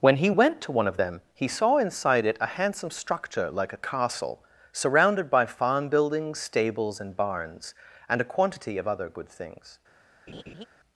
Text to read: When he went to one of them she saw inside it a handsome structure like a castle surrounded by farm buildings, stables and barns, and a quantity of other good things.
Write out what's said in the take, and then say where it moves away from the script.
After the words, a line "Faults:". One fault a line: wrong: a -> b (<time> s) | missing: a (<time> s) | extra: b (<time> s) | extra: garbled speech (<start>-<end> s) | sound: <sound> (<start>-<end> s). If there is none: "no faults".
When he went to one of them he saw inside it a handsome structure like a castle surrounded by farm buildings, stables and barns, and a quantity of other good things.
Faults:
wrong: she -> he (1.3 s)
sound: laugh (10.3-10.7 s)